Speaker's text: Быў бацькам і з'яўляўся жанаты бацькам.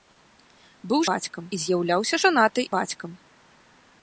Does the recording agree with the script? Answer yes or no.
yes